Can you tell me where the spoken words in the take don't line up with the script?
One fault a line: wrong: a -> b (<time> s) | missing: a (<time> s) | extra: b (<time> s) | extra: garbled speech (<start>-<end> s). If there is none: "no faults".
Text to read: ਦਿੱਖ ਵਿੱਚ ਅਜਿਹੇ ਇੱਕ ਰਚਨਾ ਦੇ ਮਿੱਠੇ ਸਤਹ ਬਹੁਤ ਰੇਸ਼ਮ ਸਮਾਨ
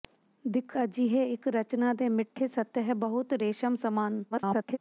missing: ਵਿੱਚ (0.8 s)
extra: garbled speech (4.3-4.8 s)